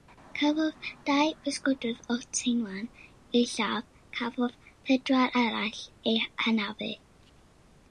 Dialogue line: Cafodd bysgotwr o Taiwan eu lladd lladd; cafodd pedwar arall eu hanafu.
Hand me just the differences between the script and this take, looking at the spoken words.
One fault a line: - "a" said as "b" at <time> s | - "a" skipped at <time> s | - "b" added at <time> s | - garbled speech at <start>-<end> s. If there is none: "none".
- "dau" added at 1.1 s
- "lladd" skipped at 3.9 s